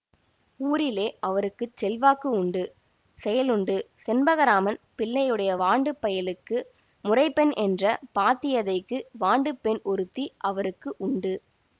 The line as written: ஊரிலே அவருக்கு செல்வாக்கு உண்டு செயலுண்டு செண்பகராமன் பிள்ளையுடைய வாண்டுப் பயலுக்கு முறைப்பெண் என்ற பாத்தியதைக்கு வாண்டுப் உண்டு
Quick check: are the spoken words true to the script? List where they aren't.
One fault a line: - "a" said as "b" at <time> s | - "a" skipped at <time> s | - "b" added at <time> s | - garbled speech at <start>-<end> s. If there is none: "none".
- "பெண் ஒருத்தி அவருக்கு" added at 9.6 s